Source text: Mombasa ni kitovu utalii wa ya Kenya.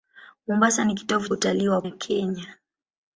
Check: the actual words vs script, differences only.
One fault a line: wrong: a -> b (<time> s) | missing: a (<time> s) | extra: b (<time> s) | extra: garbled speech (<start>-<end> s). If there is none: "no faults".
no faults